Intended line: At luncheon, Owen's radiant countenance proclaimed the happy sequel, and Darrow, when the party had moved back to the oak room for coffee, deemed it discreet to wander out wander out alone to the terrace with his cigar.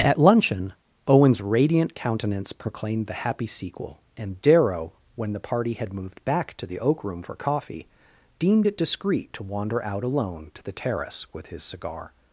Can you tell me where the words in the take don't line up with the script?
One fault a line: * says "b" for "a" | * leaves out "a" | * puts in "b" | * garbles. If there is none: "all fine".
* leaves out "wander out"